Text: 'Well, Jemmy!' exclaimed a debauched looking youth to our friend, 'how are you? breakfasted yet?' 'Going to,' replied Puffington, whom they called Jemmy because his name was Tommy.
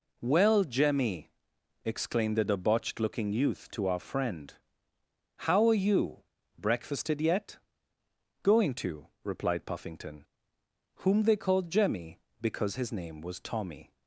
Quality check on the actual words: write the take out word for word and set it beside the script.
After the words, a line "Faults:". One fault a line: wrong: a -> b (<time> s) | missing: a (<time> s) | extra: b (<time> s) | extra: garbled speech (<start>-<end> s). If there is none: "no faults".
'Well, Jemmy!' exclaimed the debauched looking youth to our friend, 'how are you? breakfasted yet?' 'Going to,' replied Puffington, whom they called Jemmy because his name was Tommy.
Faults:
wrong: a -> the (2.4 s)